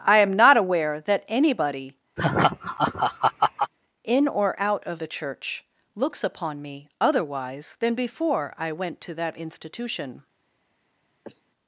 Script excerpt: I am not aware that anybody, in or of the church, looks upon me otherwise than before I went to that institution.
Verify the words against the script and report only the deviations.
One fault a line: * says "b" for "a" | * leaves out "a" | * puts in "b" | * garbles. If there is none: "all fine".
* puts in "out"